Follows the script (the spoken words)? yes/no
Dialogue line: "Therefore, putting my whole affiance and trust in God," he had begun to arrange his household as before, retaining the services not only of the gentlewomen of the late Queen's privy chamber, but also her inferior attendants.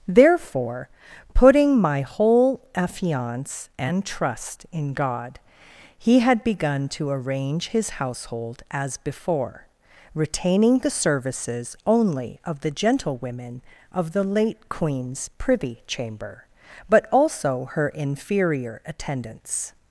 no